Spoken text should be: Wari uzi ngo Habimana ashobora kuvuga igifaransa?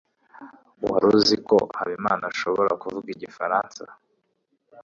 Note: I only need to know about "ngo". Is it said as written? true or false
false